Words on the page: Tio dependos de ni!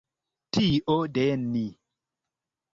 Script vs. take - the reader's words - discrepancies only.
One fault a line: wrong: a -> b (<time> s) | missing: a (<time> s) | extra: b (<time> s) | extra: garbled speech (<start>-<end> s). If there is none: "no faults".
missing: dependos (0.9 s)